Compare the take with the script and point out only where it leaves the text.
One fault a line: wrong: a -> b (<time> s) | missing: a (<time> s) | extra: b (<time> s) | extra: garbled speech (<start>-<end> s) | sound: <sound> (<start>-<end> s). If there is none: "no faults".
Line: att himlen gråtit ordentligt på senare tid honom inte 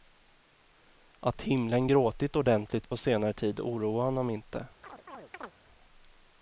extra: oroar (3.6 s)
sound: chirp (4.8-5.6 s)